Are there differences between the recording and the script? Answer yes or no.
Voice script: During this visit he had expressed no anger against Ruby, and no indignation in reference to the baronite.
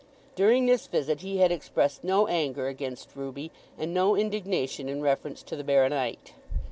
no